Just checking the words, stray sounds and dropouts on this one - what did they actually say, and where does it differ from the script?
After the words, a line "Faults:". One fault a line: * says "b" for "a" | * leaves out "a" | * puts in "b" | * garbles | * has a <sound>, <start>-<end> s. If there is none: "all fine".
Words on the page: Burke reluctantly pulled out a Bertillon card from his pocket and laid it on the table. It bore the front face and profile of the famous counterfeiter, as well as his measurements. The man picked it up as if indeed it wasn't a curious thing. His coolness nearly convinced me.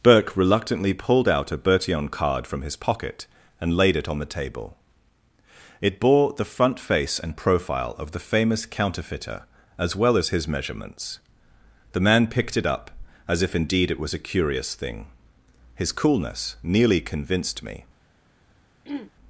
Burke reluctantly pulled out a Bertillon card from his pocket and laid it on the table. It bore the front face and profile of the famous counterfeiter, as well as his measurements. The man picked it up as if indeed it was a curious thing. His coolness nearly convinced me.
Faults:
* says "was" for "wasn't"
* has a throat clearing, 18.8-19.1 s